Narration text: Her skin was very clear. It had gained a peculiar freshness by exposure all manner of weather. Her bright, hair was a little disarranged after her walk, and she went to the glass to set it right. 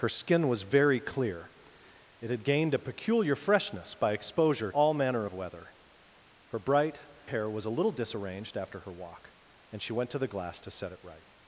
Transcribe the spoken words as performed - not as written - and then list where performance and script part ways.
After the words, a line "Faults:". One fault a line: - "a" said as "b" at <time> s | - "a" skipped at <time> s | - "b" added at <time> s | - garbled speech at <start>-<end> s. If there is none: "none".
Her skin was very clear. It had gained a peculiar freshness by exposure all manner of weather. Her bright, hair was a little disarranged after her walk, and she went to the glass to set it right.
Faults:
none